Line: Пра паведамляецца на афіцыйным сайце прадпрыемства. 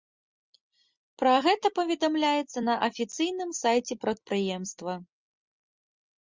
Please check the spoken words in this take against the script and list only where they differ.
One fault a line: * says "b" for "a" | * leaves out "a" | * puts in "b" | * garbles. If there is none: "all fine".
* puts in "гэта"